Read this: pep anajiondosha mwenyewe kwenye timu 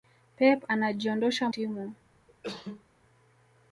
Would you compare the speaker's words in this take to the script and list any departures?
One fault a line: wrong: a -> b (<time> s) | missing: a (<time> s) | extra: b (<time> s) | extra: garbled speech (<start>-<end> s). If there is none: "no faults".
missing: mwenyewe kwenye (1.5 s)